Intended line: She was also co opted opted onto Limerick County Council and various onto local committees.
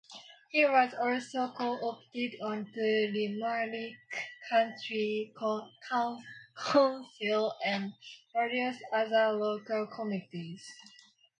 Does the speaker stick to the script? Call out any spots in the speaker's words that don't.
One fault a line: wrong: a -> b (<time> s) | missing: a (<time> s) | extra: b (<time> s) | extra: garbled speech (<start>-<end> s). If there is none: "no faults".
wrong: She -> He (0.5 s)
missing: opted (2.3 s)
wrong: onto -> other (8.9 s)